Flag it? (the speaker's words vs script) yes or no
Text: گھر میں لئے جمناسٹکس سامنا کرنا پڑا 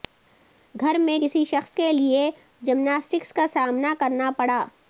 yes